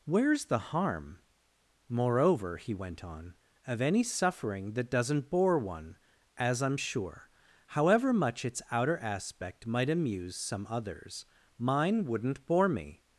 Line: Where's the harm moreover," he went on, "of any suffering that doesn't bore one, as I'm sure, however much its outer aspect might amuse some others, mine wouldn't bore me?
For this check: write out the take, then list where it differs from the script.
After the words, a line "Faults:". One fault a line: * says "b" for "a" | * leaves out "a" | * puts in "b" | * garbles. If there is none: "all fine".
Where's the harm moreover," he went on, "of any suffering that doesn't bore one, as I'm sure, however much its outer aspect might amuse some others, mine wouldn't bore me?
Faults:
all fine